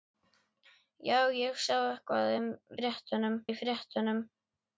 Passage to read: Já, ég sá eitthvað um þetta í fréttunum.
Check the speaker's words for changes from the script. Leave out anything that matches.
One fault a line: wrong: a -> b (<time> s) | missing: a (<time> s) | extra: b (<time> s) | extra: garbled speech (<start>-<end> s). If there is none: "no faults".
wrong: þetta -> fréttunum (2.8 s)